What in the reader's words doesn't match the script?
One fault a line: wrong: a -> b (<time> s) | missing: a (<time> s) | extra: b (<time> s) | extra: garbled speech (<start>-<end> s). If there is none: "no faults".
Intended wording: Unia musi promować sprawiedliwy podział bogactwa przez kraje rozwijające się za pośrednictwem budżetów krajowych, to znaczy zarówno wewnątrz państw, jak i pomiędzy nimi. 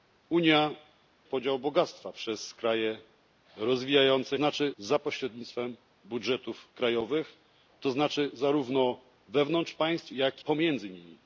missing: musi promować sprawiedliwy (0.8 s)
wrong: się -> znaczy (4.3 s)
missing: i (10.4 s)